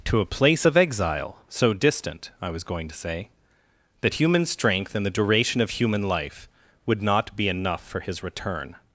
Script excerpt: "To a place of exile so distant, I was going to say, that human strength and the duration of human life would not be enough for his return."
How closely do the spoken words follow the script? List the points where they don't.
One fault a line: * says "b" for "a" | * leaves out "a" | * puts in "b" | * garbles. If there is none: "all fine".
all fine